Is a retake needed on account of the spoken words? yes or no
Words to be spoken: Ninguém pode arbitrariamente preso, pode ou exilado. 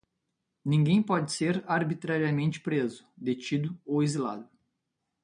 yes